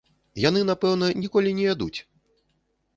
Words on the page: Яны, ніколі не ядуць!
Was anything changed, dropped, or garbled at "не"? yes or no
no